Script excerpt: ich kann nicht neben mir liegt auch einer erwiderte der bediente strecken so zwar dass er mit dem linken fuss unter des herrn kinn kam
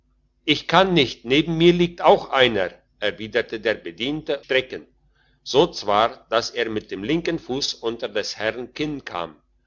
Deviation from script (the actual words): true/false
false